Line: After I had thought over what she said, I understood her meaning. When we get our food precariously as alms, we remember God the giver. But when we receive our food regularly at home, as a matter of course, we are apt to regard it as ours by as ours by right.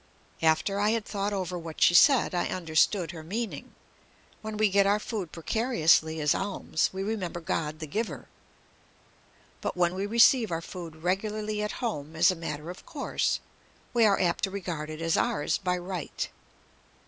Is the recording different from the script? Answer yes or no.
yes